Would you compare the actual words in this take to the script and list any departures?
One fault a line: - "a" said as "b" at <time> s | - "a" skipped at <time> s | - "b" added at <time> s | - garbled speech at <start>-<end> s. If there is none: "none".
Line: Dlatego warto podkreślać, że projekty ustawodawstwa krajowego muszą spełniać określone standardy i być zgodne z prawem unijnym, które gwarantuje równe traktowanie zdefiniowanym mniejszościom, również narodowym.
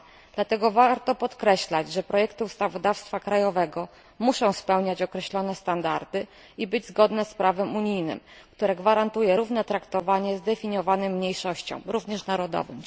none